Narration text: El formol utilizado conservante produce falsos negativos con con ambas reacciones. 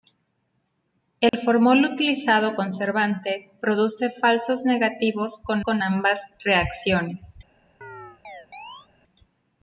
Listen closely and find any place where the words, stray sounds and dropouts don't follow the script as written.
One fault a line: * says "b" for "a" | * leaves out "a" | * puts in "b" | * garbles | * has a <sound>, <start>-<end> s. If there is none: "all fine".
* has a dropout, 1.3-1.3 s
* has a chirp, 7.8-8.9 s